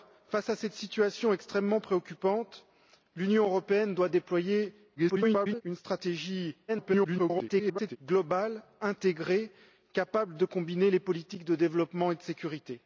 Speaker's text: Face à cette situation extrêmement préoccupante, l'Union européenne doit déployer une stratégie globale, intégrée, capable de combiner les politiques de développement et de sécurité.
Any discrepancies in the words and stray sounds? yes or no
yes